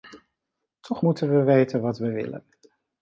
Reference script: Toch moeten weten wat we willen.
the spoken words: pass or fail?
fail